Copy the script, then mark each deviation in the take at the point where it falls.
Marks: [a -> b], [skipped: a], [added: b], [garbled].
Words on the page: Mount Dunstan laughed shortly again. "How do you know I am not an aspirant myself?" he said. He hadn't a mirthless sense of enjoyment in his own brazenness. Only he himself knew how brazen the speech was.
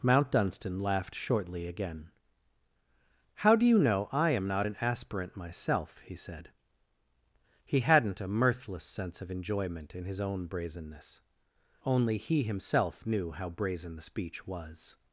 Mount Dunstan laughed shortly again. "How do you know I am not an aspirant myself?" he said. He hadn't a mirthless sense of enjoyment in his own brazenness. Only he himself knew how brazen the speech was.